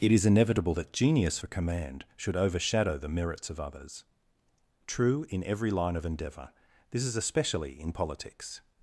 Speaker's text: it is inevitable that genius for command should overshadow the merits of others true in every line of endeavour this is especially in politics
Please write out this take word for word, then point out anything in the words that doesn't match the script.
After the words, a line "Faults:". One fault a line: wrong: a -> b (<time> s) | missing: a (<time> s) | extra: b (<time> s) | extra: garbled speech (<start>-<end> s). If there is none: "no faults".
it is inevitable that genius for command should overshadow the merits of others true in every line of endeavour this is especially in politics
Faults:
no faults